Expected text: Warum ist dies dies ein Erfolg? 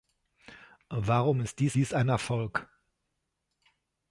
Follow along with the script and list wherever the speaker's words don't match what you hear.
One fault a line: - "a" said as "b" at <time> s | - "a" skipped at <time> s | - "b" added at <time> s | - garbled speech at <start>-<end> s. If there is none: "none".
none